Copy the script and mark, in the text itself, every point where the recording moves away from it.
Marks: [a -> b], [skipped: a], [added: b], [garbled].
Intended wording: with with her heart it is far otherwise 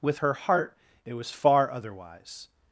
with [skipped: with] her heart it [is -> was] far otherwise